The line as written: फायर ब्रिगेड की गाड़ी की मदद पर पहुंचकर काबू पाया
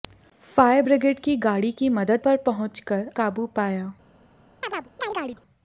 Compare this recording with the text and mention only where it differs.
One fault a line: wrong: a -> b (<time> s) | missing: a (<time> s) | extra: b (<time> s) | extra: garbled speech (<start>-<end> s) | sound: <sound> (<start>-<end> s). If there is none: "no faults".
sound: chirp (4.6-5.4 s)